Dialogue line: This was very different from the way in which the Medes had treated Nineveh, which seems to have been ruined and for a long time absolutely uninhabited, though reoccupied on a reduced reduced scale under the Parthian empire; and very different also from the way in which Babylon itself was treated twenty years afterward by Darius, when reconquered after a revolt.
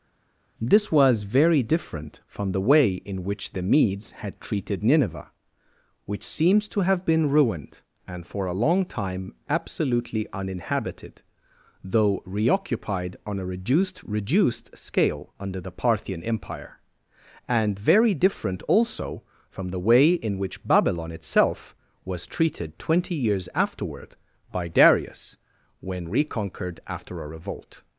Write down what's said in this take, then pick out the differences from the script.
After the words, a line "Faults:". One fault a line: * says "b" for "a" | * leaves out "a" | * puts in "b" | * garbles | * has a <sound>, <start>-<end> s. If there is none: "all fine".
This was very different from the way in which the Medes had treated Nineveh, which seems to have been ruined and for a long time absolutely uninhabited, though reoccupied on a reduced reduced scale under the Parthian empire; and very different also from the way in which Babylon itself was treated twenty years afterward by Darius, when reconquered after a revolt.
Faults:
all fine